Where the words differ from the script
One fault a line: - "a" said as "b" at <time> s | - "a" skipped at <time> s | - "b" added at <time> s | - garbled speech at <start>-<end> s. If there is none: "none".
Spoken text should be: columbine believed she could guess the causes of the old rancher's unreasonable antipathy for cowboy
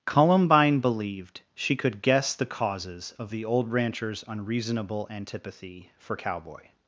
none